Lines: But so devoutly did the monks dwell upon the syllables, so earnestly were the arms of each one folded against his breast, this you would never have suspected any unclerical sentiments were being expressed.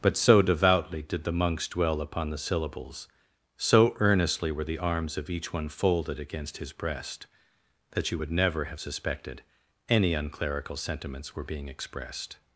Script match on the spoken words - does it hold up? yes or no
no